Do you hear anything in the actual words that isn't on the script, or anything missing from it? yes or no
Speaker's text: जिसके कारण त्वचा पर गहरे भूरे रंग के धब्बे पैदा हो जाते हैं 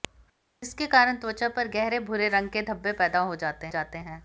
yes